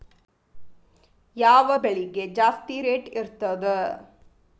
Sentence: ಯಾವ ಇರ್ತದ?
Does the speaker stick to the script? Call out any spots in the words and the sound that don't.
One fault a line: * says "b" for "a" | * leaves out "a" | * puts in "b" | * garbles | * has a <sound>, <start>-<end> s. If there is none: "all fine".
* puts in "ಬೆಳಿಗೆ ಜಾಸ್ತಿ ರೇಟ್"